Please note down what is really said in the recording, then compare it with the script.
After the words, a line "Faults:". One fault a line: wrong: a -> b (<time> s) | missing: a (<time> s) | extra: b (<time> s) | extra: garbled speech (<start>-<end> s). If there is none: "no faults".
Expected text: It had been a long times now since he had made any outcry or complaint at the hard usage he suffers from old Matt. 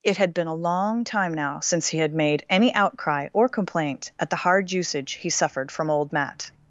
It had been a long time now since he had made any outcry or complaint at the hard usage he suffered from old Matt.
Faults:
wrong: times -> time (1.0 s)
wrong: suffers -> suffered (5.3 s)